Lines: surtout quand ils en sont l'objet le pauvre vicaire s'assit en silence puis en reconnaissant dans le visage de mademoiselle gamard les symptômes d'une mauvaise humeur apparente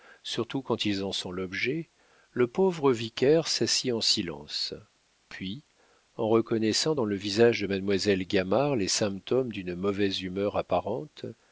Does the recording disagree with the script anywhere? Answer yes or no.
no